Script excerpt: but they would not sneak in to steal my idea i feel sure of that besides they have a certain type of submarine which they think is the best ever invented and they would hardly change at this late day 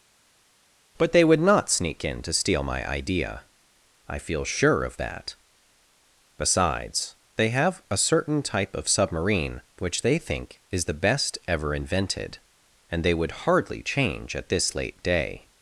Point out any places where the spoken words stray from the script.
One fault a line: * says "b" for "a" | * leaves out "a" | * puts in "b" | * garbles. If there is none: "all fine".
all fine